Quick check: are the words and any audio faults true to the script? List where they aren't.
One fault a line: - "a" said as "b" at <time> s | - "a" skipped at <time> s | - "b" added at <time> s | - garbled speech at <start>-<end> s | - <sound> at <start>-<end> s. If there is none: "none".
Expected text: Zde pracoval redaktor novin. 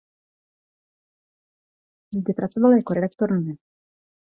- "jako" added at 2.7 s